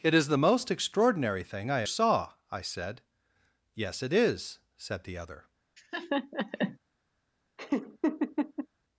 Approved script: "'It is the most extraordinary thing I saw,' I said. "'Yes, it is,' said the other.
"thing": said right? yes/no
yes